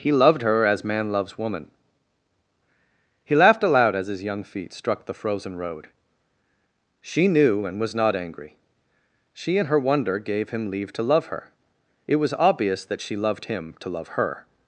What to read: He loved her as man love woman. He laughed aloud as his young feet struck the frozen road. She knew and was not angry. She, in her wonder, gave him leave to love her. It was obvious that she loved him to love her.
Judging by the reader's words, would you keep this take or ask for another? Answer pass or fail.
fail